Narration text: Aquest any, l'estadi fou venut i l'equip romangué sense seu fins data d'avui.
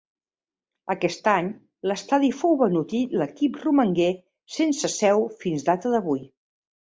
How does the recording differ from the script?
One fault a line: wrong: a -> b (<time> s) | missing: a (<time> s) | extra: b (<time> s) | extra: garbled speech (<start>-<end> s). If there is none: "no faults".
no faults